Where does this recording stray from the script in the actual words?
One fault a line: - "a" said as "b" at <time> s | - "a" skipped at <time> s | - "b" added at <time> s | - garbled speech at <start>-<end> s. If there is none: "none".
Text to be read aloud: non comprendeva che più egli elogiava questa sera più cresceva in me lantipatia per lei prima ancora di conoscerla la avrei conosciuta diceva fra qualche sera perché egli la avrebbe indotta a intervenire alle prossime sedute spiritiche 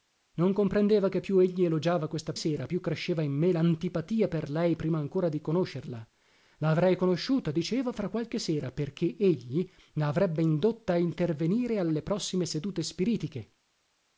none